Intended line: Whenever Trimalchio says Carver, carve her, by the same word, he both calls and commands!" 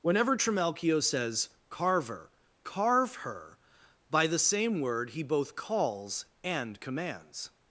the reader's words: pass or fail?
pass